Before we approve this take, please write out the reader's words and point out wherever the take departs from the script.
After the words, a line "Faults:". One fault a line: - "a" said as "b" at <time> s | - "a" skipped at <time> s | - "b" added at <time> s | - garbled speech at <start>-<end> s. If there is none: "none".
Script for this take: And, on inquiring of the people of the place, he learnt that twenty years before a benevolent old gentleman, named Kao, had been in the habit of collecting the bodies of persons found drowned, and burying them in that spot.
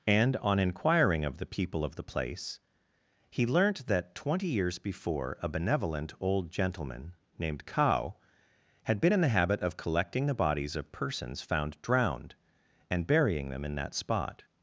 And, on inquiring of the people of the place, he learnt that twenty years before a benevolent old gentleman, named Kao, had been in the habit of collecting the bodies of persons found drowned, and burying them in that spot.
Faults:
none